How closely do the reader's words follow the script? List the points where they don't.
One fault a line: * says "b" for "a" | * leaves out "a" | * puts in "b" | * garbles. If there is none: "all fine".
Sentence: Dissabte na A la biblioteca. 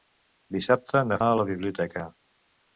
all fine